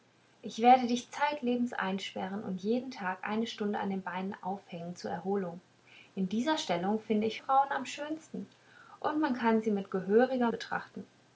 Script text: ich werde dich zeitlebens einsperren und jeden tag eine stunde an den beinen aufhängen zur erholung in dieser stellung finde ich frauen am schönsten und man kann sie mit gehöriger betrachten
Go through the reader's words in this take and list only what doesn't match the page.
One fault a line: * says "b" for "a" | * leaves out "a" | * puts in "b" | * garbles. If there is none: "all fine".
all fine